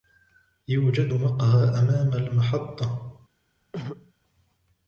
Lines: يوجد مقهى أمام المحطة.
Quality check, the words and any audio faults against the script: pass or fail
fail